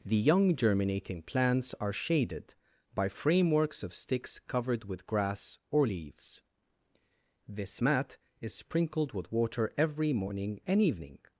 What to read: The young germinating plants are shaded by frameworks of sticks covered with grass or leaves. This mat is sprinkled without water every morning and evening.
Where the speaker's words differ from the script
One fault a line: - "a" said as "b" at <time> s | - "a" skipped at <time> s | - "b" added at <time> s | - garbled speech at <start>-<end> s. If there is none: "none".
- "without" said as "with" at 9.1 s